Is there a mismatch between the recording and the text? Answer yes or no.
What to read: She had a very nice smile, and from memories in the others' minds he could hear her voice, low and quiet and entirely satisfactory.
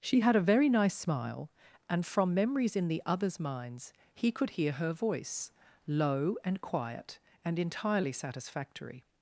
no